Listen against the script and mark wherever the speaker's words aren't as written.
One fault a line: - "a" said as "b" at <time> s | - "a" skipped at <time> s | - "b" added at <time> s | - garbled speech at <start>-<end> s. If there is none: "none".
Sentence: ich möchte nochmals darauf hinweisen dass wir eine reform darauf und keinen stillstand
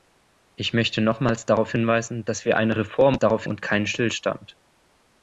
none